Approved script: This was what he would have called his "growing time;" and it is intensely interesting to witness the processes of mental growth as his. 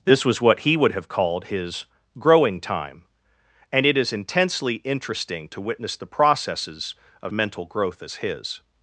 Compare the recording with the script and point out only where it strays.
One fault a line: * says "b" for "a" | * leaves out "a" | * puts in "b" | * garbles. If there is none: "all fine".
all fine